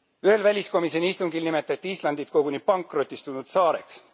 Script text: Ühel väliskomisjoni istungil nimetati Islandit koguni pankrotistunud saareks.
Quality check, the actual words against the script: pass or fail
pass